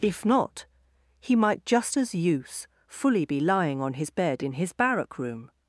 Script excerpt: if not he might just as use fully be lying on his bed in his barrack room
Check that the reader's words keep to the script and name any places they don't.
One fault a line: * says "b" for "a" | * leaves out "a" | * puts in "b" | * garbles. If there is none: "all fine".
all fine